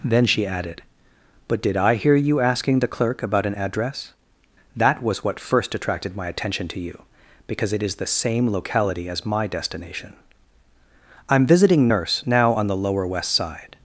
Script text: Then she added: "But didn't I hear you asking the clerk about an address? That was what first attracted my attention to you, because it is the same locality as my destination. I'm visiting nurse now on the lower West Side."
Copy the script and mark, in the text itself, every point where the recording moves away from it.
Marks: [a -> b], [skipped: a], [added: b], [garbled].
Then she added: "But [didn't -> did] I hear you asking the clerk about an address? That was what first attracted my attention to you, because it is the same locality as my destination. I'm visiting nurse now on the lower West Side."